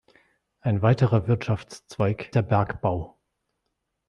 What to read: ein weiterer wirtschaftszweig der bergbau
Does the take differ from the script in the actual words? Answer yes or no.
no